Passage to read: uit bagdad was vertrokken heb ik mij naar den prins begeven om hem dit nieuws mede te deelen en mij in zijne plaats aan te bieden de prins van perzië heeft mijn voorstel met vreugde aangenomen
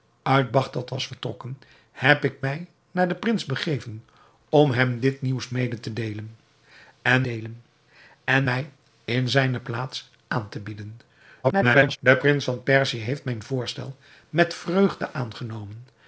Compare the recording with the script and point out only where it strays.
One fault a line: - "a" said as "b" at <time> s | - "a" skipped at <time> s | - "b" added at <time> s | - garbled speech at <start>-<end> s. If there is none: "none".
- "deelen en" added at 7.2 s
- garbled speech at 11.4-12.0 s